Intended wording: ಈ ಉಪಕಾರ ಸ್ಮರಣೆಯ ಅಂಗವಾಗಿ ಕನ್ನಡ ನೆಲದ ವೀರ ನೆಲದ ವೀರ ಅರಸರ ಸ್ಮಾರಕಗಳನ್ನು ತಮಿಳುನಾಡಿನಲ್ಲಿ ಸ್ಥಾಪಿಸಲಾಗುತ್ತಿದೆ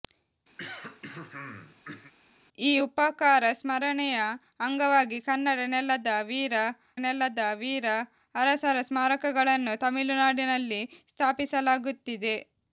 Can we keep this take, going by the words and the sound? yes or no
no